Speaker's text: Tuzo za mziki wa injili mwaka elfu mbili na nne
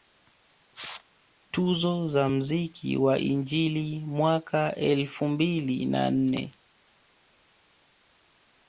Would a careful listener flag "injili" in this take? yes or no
no